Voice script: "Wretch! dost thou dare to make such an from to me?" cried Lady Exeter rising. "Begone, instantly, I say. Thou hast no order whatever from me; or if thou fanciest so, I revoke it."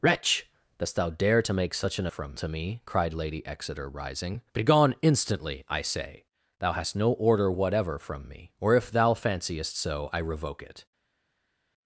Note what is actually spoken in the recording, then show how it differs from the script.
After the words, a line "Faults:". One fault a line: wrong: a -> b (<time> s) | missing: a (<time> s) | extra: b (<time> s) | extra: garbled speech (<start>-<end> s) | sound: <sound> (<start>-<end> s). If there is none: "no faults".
"Wretch! dost thou dare to make such an from to me?" cried Lady Exeter rising. "Begone, instantly, I say. Thou hast no order whatever from me; or if thou fanciest so, I revoke it."
Faults:
no faults